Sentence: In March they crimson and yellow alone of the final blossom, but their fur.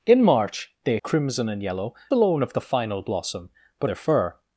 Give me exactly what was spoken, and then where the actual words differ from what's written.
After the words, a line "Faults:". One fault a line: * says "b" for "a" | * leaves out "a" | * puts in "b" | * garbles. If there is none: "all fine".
In March they crimson and yellow alone of the final blossom, but their fur.
Faults:
all fine